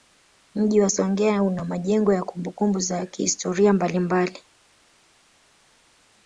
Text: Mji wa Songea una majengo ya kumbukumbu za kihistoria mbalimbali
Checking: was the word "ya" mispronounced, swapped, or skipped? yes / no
no